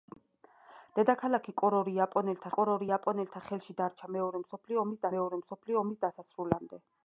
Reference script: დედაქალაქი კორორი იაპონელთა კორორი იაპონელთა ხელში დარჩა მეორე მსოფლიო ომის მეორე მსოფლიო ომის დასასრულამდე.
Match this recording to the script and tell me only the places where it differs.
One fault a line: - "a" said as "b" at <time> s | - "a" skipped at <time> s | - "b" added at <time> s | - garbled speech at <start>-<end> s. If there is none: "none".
none